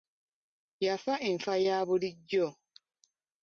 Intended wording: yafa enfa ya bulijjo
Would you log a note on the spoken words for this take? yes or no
no